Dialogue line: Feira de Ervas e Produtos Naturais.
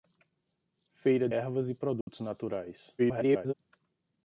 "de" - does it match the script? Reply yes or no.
no